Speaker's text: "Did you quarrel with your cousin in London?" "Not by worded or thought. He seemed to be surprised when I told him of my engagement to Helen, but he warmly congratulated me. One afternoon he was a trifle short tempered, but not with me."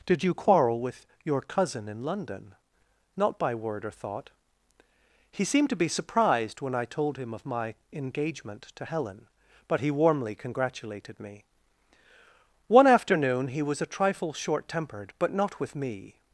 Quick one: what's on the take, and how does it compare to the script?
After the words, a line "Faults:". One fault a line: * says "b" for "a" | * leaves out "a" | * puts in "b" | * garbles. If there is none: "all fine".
"Did you quarrel with your cousin in London?" "Not by word or thought. He seemed to be surprised when I told him of my engagement to Helen, but he warmly congratulated me. One afternoon he was a trifle short tempered, but not with me."
Faults:
* says "word" for "worded"